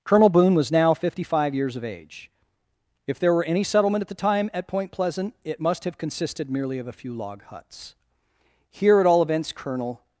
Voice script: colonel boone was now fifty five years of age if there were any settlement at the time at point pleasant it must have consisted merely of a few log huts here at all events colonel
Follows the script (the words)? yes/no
yes